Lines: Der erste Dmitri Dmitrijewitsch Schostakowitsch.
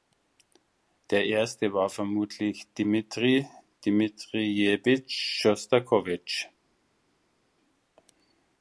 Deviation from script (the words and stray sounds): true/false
true